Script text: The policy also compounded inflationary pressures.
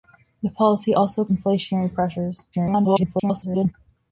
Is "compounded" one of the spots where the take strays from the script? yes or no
yes